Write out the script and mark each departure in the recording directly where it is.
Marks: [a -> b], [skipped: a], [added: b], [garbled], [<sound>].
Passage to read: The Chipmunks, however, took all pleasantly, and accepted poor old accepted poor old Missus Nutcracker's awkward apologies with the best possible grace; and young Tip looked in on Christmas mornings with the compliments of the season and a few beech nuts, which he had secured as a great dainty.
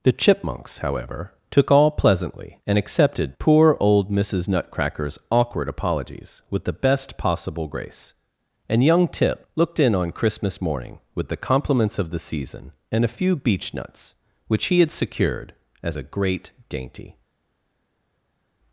The Chipmunks, however, took all pleasantly, and accepted poor old [skipped: accepted poor old] Missus Nutcracker's awkward apologies with the best possible grace; and young Tip looked in on Christmas [mornings -> morning] with the compliments of the season and a few beech nuts, which he had secured as a great dainty.